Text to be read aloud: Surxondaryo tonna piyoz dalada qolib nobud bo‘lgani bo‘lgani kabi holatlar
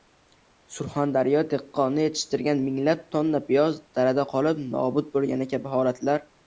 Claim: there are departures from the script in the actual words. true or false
true